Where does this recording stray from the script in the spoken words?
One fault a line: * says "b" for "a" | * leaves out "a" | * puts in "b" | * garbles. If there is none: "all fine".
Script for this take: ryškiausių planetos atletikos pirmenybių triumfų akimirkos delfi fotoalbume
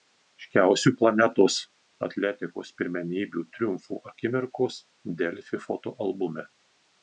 all fine